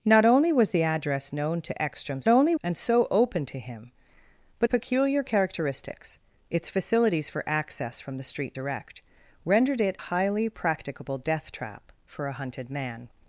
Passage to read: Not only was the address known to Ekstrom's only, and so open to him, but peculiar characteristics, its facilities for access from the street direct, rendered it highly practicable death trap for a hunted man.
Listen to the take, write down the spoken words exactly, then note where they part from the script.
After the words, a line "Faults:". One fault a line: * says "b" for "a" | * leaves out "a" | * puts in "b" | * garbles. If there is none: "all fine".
Not only was the address known to Ekstrom's only, and so open to him, but peculiar characteristics, its facilities for access from the street direct, rendered it highly practicable death trap for a hunted man.
Faults:
all fine